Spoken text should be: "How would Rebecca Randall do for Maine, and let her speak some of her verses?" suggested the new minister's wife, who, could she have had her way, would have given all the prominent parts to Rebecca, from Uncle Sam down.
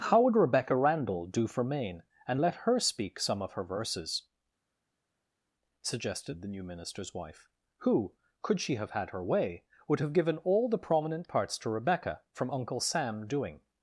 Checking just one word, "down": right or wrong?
wrong